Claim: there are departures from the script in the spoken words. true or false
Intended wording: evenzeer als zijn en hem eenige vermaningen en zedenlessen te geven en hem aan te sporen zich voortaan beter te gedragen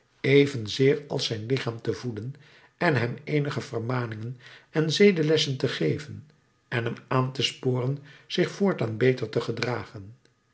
true